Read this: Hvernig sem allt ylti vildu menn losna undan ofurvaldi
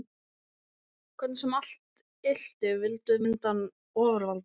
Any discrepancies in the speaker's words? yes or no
yes